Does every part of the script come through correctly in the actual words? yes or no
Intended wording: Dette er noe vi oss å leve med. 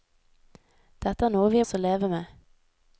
yes